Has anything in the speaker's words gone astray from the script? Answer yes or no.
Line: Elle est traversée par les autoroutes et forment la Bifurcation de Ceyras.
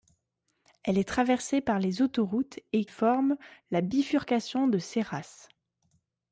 no